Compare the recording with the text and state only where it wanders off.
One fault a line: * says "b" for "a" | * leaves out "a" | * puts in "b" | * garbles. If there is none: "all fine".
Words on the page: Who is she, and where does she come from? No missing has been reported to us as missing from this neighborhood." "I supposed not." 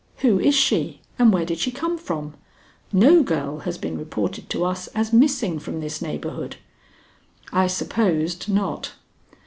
* says "did" for "does"
* says "girl" for "missing"